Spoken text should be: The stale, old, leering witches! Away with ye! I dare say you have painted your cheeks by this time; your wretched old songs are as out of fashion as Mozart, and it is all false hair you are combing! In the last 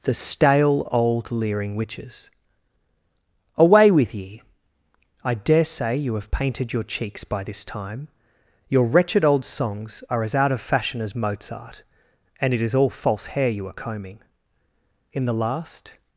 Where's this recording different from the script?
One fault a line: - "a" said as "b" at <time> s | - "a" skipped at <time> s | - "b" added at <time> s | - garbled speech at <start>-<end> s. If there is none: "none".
none